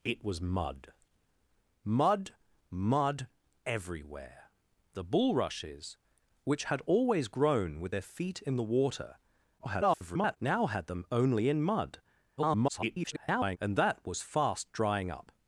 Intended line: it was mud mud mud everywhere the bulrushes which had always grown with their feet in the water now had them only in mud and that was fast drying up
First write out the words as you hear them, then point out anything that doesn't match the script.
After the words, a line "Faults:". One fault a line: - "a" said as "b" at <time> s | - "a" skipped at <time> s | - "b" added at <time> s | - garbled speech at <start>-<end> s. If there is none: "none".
it was mud mud mud everywhere the bulrushes which had always grown with their feet in the water [garbled] now had them only in mud [garbled] and that was fast drying up
Faults:
- garbled speech at 9.6-10.4 s
- garbled speech at 12.4-13.6 s